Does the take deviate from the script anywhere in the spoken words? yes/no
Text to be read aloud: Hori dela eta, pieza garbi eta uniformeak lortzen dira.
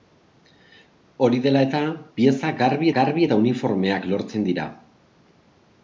yes